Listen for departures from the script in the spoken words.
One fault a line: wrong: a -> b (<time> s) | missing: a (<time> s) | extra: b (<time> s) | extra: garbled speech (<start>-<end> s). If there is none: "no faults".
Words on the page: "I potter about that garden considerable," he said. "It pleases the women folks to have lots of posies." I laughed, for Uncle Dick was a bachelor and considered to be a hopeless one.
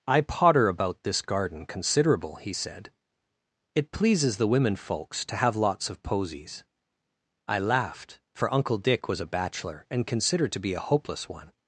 wrong: that -> this (1.0 s)